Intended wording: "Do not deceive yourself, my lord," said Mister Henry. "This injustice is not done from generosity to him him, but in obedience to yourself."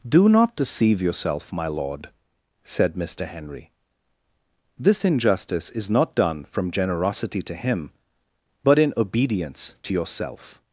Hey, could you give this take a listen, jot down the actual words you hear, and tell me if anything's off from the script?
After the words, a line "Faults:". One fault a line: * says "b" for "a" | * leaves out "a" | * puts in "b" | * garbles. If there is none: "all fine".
"Do not deceive yourself, my lord," said Mister Henry. "This injustice is not done from generosity to him, but in obedience to yourself."
Faults:
* leaves out "him"